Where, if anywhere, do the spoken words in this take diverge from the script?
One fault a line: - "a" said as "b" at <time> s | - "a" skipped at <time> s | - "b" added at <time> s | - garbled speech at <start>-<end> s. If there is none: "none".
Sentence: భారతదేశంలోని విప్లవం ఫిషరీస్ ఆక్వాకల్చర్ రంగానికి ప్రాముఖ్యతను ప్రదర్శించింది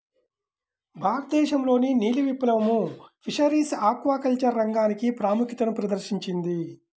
- "నీలి" added at 1.9 s